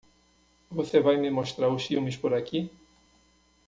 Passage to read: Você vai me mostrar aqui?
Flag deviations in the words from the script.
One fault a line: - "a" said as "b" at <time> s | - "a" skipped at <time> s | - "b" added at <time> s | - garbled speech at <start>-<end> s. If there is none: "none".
- "os filmes por" added at 1.7 s